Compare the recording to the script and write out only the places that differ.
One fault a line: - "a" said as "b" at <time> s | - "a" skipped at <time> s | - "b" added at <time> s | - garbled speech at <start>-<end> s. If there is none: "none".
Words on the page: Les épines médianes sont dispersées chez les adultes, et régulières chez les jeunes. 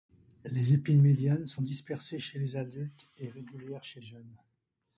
- "les" skipped at 4.0 s